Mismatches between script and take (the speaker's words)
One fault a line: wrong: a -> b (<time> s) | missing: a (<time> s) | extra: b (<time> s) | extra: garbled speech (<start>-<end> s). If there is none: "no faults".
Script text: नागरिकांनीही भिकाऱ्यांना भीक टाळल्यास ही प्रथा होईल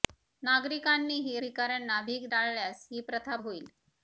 no faults